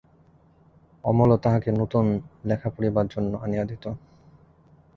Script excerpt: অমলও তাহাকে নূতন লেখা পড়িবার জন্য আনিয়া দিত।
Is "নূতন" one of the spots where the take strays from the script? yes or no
no